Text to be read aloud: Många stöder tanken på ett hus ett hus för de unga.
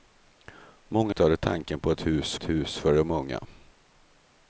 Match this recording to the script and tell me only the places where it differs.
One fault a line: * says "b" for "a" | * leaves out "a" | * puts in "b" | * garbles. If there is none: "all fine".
all fine